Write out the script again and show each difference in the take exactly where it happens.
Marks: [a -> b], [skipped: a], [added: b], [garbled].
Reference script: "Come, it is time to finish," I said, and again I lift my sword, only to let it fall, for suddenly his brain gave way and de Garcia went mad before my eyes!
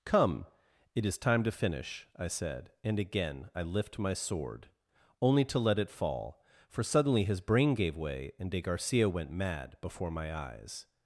"Come, it is time to finish," I said, and again I lift my sword, only to let it fall, for suddenly his brain gave way and de Garcia went mad before my eyes!